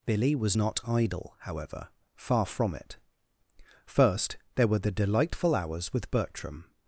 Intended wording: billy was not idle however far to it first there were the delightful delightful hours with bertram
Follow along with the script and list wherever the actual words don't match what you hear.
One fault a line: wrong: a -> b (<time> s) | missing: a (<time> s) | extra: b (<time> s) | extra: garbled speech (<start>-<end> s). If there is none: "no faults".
wrong: to -> from (2.5 s)
missing: delightful (5.5 s)